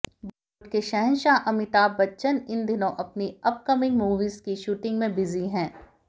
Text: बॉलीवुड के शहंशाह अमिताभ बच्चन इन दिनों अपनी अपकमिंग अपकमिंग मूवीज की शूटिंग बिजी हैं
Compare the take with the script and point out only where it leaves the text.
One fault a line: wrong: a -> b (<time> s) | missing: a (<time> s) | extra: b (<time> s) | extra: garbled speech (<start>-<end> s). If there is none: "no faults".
missing: अपकमिंग (4.0 s)
extra: में (5.0 s)